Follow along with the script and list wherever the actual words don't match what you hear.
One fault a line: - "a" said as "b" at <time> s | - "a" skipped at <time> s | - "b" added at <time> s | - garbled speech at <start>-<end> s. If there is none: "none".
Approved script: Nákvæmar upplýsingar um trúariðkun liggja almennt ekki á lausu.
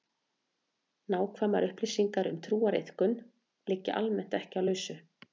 none